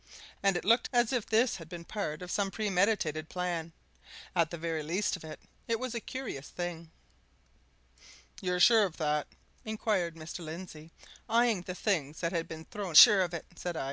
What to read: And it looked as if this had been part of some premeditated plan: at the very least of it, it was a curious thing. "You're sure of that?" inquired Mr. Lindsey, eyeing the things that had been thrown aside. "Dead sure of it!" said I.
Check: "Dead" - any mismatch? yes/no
yes